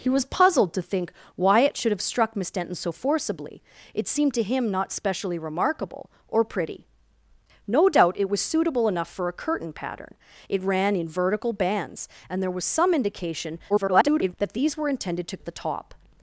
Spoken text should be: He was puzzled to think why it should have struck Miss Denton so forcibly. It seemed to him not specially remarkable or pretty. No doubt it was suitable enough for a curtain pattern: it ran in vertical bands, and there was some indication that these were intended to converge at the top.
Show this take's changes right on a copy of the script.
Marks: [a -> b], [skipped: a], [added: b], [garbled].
He was puzzled to think why it should have struck Miss Denton so forcibly. It seemed to him not specially remarkable or pretty. No doubt it was suitable enough for a curtain pattern: it ran in vertical bands, and there was some indication [garbled] that these were intended to [skipped: converge] at the top.